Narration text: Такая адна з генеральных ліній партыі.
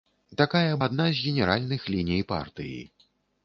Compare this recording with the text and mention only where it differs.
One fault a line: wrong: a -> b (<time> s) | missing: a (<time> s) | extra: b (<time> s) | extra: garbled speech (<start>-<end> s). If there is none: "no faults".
no faults